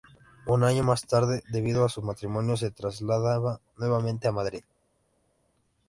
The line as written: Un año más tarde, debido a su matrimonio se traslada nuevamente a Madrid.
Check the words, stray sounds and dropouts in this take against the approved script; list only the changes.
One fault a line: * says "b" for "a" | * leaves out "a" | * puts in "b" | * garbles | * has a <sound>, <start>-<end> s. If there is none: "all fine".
all fine